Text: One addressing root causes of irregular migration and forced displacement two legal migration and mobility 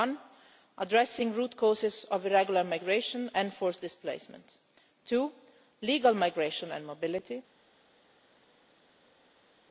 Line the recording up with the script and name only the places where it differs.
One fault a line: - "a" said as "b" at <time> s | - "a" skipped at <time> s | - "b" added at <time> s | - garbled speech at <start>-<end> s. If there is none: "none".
none